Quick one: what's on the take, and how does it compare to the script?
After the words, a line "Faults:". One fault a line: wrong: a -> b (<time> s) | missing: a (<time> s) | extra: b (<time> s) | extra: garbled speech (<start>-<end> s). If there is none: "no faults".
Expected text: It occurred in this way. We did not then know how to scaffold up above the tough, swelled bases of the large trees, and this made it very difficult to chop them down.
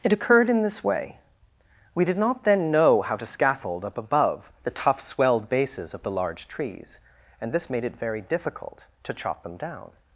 It occurred in this way. We did not then know how to scaffold up above the tough, swelled bases of the large trees, and this made it very difficult to chop them down.
Faults:
no faults